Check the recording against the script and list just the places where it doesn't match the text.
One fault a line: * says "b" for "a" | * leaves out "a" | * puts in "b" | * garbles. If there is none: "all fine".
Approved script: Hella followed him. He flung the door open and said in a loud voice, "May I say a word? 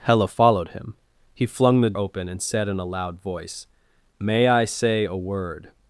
* leaves out "door"